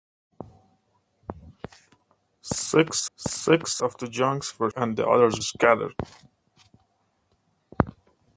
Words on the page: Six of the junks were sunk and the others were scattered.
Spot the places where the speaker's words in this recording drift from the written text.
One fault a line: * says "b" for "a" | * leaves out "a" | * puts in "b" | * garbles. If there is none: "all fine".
* puts in "six"
* leaves out "sunk"
* leaves out "were"